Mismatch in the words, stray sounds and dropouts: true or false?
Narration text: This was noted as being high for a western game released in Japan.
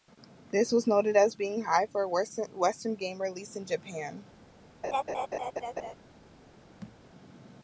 true